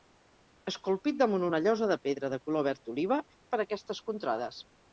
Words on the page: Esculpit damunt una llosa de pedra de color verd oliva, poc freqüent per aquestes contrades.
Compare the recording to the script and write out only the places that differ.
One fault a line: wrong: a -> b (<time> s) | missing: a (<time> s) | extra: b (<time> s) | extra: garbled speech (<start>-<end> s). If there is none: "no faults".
missing: poc freqüent (3.2 s)